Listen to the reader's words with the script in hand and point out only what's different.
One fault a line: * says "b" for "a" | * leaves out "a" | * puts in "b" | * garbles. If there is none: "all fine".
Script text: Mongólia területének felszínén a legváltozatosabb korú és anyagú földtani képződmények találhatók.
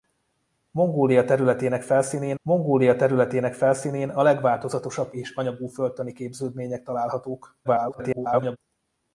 * puts in "mongólia területének felszínén"
* leaves out "korú"
* garbles